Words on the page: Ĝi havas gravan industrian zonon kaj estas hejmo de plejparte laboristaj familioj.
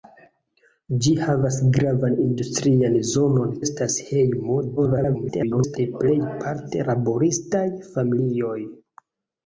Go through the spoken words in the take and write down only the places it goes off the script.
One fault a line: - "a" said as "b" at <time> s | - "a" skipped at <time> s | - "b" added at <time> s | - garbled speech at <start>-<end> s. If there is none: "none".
- "kaj" skipped at 3.5 s
- garbled speech at 4.8-5.8 s